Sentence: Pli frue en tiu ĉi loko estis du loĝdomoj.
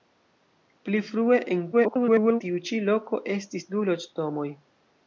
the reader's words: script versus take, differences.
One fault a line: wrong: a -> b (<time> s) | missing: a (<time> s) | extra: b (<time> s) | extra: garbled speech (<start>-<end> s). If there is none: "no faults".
extra: garbled speech (1.7-2.4 s)